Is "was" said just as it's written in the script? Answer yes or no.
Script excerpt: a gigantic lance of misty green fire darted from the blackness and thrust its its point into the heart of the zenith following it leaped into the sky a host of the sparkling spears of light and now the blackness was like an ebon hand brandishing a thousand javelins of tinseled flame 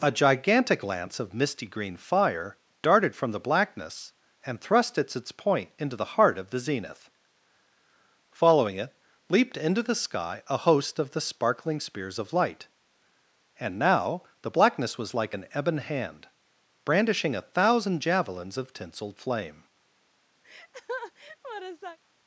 yes